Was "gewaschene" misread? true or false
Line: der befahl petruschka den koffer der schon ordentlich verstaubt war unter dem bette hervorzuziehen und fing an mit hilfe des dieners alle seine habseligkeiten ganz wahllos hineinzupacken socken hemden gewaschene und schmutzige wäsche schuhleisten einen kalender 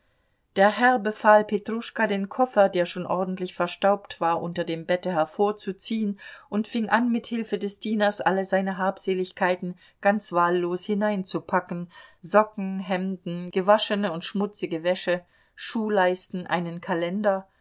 false